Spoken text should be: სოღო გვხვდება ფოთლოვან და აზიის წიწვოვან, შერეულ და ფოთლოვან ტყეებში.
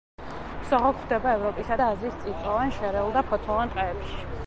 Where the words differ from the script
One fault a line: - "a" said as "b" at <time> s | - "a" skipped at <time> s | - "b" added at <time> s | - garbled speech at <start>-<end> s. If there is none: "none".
- "ფოთლოვან" said as "ევროპისა" at 1.4 s